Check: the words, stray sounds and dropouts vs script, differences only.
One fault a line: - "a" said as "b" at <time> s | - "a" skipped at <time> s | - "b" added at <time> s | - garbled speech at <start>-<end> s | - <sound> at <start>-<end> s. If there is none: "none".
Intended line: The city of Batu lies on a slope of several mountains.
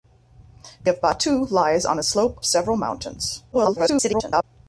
- "city" skipped at 0.9 s
- "of" skipped at 2.4 s
- garbled speech at 3.5-4.4 s